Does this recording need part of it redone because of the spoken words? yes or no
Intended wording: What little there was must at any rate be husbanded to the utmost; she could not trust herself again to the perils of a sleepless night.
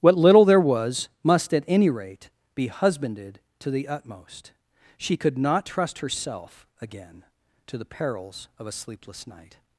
no